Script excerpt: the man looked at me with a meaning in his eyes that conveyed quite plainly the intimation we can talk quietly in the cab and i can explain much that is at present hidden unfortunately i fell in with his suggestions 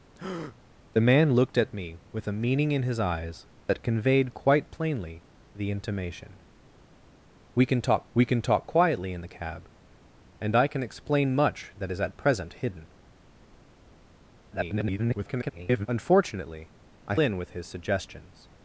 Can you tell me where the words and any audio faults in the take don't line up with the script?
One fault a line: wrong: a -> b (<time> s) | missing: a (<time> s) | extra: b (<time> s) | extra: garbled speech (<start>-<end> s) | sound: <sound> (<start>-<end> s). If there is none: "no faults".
sound: breath (0.2-0.6 s)
extra: we can talk (8.1 s)
extra: garbled speech (14.5-15.9 s)
missing: fell (17.2 s)